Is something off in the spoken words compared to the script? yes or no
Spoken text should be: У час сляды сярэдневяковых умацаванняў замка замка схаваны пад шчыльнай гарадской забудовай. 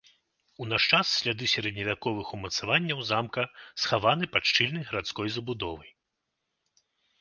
yes